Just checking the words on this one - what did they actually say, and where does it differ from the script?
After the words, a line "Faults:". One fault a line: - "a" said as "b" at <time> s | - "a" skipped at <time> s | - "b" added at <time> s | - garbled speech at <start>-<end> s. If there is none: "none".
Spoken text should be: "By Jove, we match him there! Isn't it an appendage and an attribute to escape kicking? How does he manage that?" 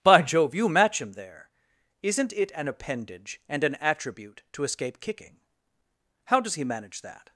"By Jove, you match him there! Isn't it an appendage and an attribute to escape kicking? How does he manage that?"
Faults:
- "we" said as "you" at 0.6 s